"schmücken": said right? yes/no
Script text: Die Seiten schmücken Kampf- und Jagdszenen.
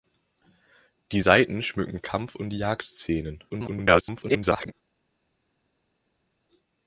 yes